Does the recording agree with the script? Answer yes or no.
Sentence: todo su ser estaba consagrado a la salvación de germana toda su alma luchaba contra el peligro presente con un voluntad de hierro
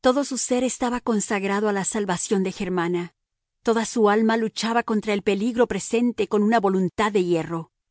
no